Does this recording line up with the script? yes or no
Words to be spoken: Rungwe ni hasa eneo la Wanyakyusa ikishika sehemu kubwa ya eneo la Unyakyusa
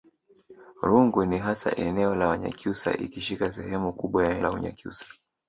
no